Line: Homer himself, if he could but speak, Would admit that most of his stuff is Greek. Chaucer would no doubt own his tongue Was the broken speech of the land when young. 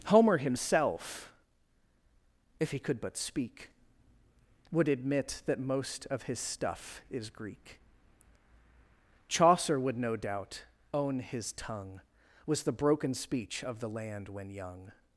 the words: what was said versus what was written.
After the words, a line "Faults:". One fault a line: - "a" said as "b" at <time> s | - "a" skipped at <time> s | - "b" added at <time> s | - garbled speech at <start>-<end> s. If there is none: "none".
Homer himself, if he could but speak, Would admit that most of his stuff is Greek. Chaucer would no doubt own his tongue Was the broken speech of the land when young.
Faults:
none